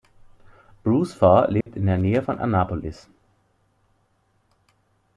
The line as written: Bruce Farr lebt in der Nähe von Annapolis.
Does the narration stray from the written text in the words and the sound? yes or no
yes